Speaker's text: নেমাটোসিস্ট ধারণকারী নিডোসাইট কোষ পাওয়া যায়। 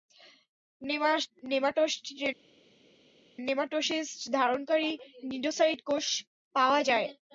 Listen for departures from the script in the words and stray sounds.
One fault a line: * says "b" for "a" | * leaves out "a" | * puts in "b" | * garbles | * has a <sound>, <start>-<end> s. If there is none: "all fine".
all fine